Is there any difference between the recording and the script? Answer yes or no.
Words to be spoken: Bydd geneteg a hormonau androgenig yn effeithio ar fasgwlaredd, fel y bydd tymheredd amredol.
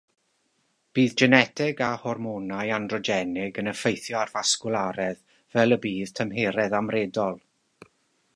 no